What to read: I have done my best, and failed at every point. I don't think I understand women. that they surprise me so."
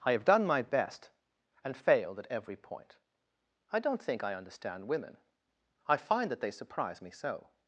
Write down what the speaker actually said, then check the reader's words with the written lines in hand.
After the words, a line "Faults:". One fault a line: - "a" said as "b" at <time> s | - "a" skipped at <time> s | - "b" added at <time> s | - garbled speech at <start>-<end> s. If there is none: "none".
I have done my best, and failed at every point. I don't think I understand women. I find that they surprise me so."
Faults:
- "I find" added at 5.9 s